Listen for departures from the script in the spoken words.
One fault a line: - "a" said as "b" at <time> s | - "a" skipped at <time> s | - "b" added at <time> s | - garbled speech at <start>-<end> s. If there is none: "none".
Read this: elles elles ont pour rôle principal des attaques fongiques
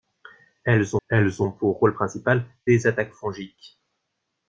none